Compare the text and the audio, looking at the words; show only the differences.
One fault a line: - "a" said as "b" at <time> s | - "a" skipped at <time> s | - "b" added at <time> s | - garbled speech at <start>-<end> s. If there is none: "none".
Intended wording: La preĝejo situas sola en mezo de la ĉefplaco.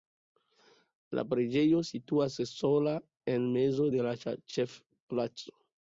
none